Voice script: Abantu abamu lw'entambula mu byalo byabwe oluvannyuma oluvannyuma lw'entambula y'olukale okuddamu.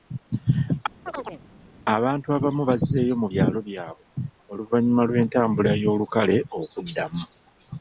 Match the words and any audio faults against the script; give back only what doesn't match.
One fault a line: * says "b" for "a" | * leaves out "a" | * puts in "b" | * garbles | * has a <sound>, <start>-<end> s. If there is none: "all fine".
* has a chirp, 1.1-1.4 s
* says "bazzeeyo" for "lw'entambula"
* leaves out "oluvannyuma"